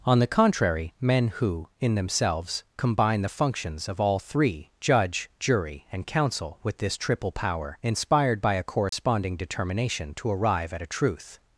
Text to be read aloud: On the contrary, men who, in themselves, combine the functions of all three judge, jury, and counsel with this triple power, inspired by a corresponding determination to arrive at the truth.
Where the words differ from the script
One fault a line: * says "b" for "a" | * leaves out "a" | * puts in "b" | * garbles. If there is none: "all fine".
* says "a" for "the"